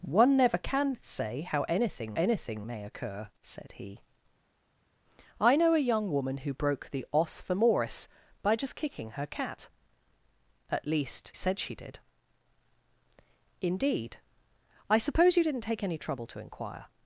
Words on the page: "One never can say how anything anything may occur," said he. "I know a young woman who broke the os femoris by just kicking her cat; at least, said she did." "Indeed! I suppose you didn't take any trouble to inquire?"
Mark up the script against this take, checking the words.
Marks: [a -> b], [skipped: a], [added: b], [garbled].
"One never can say how anything anything may occur," said he. "I know a young woman who broke the os femoris by just kicking her cat; at least, said she did." "Indeed! I suppose you didn't take any trouble to inquire?"